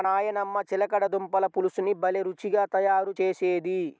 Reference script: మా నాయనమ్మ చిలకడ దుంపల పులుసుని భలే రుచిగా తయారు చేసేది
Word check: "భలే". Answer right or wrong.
right